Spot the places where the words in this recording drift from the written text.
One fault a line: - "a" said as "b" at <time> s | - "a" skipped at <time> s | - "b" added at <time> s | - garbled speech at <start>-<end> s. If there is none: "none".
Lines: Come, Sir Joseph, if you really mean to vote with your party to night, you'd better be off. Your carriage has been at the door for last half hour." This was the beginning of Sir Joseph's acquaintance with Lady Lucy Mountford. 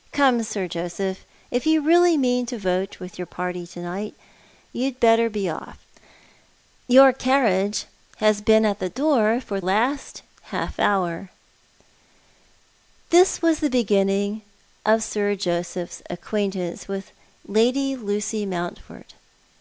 none